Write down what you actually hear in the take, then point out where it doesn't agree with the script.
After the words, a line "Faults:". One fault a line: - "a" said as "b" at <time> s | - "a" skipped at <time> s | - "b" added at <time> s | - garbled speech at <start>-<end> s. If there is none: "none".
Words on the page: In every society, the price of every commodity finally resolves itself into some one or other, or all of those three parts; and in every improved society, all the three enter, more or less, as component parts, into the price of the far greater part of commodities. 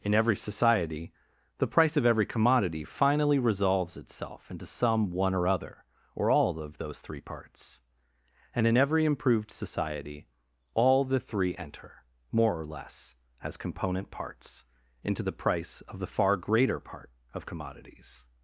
In every society, the price of every commodity finally resolves itself into some one or other, or all of those three parts; and in every improved society, all the three enter, more or less, as component parts, into the price of the far greater part of commodities.
Faults:
none